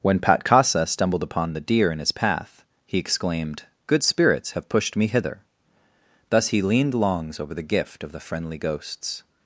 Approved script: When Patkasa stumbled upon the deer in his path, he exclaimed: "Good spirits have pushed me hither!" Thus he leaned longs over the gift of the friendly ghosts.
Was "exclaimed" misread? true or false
false